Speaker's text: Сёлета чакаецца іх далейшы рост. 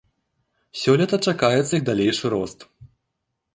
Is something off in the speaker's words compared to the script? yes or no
no